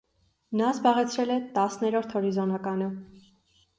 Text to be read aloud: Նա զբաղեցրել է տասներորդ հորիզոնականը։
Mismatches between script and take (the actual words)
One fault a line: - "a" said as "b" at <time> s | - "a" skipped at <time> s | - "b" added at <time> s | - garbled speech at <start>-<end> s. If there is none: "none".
none